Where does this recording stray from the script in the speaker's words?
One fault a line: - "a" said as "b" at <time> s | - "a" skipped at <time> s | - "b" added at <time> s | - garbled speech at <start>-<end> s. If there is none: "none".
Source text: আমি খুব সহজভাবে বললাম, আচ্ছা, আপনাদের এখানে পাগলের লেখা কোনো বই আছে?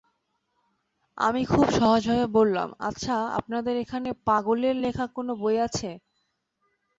none